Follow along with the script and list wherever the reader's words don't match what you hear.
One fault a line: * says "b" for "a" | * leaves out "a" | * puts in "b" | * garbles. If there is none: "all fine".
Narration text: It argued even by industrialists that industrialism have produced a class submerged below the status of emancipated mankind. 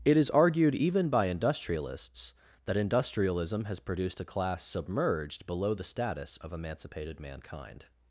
* puts in "is"
* says "has" for "have"